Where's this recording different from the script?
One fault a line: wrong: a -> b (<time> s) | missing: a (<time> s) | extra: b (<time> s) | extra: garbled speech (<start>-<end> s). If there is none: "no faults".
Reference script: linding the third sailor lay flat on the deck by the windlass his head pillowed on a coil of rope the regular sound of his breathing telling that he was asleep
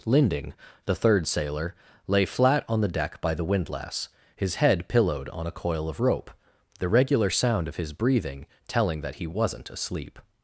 wrong: was -> wasn't (9.3 s)